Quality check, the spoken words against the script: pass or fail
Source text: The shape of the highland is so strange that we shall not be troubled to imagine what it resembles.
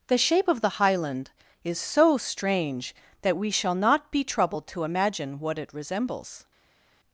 pass